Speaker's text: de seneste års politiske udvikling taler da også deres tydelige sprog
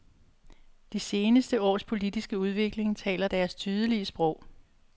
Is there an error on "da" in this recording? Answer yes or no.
yes